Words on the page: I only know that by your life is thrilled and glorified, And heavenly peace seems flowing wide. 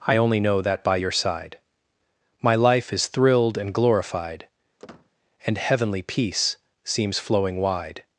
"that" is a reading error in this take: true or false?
false